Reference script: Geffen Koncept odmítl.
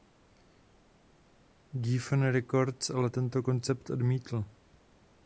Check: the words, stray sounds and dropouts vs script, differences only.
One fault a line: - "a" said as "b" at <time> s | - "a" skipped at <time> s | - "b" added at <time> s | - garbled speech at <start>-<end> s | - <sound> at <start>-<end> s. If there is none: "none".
- "Records ale tento" added at 2.3 s